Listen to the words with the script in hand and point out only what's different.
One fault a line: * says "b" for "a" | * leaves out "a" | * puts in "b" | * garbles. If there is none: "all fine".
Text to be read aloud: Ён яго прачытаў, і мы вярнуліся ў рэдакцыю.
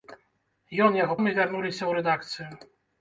* leaves out "прачытаў"